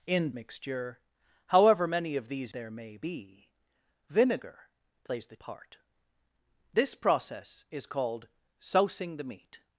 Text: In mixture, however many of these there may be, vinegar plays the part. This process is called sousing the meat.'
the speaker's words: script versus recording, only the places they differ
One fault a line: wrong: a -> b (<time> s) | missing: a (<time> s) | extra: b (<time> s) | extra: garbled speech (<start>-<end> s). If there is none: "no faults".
no faults